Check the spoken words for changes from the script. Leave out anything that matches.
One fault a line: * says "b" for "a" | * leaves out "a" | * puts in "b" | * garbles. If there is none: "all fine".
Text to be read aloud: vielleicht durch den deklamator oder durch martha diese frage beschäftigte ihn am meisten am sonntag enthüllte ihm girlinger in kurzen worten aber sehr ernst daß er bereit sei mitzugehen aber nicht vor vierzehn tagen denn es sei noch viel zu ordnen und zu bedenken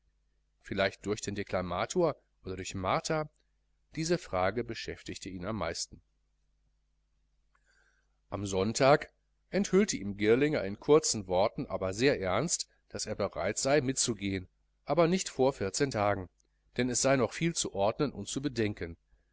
all fine